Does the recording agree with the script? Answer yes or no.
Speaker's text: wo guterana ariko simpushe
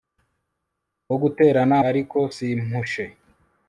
yes